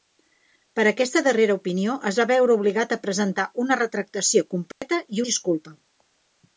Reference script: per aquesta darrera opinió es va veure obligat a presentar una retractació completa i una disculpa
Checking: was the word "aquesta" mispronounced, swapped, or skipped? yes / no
no